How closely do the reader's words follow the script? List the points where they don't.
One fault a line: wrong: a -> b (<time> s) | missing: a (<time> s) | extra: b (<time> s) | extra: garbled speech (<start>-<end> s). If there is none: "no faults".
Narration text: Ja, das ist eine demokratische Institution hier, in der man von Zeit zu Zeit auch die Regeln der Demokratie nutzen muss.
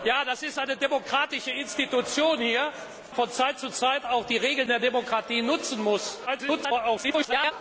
missing: in der man (2.7 s)
extra: garbled speech (6.3-7.5 s)